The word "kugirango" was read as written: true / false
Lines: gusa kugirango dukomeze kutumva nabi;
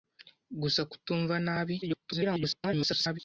false